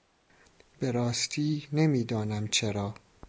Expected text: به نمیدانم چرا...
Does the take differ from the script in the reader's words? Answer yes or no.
yes